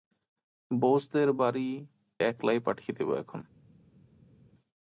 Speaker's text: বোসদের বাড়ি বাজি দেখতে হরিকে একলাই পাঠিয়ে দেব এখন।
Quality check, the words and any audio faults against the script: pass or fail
fail